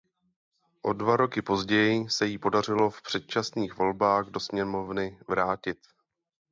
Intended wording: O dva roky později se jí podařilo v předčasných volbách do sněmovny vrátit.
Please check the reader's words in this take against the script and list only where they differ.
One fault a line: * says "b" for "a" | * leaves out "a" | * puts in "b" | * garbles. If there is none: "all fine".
all fine